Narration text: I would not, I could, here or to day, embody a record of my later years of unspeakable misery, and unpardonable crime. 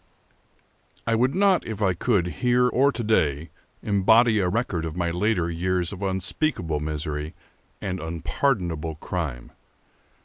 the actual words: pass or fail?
fail